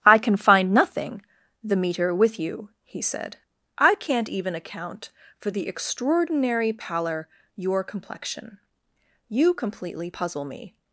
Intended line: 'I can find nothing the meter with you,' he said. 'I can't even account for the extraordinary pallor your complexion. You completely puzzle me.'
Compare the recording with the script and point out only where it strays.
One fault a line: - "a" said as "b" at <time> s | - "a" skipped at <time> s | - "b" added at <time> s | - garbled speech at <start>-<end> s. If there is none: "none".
none